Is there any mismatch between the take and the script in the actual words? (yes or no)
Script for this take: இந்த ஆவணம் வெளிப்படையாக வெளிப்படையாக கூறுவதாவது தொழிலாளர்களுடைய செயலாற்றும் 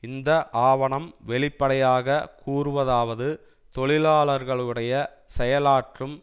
yes